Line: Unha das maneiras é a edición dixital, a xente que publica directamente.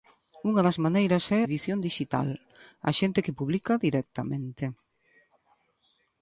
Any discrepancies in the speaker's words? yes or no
yes